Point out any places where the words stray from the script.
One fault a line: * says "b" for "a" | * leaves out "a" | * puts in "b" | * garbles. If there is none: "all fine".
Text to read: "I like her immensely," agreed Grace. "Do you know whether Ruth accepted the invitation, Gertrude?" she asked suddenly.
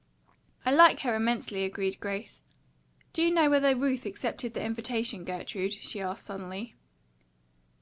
all fine